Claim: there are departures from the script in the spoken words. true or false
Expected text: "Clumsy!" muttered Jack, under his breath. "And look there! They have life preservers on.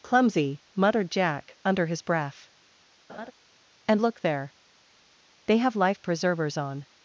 false